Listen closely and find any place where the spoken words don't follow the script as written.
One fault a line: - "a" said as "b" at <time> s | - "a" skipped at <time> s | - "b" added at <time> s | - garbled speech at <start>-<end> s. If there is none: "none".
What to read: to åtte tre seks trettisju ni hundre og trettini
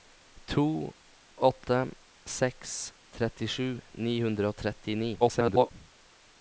- "tre" skipped at 1.9 s
- garbled speech at 5.2-5.7 s